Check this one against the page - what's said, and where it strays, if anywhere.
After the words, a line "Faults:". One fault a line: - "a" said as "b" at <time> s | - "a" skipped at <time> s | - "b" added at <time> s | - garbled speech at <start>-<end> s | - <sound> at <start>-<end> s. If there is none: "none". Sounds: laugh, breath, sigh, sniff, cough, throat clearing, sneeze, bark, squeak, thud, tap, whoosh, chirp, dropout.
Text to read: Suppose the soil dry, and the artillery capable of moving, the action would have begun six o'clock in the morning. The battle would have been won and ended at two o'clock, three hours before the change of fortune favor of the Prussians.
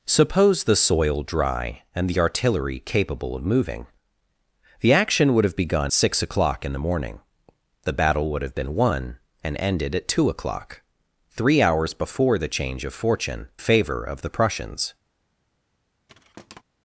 Suppose the soil dry, and the artillery capable of moving, the action would have begun six o'clock in the morning. The battle would have been won and ended at two o'clock, three hours before the change of fortune favor of the Prussians.
Faults:
- thud at 16.1-16.6 s